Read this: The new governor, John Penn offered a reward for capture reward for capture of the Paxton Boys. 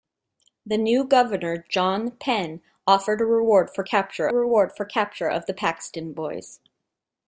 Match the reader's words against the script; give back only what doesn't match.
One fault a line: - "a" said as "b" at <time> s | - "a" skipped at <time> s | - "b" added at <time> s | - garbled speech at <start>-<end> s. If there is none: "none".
none